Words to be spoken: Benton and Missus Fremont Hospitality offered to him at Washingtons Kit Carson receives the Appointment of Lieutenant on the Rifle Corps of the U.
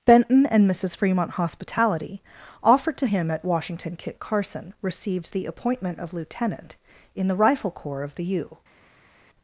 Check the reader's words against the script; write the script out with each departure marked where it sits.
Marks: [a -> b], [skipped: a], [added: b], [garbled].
Benton and Missus Fremont Hospitality offered to him at [Washingtons -> Washington] Kit Carson receives the Appointment of Lieutenant [on -> in] the Rifle Corps of the U.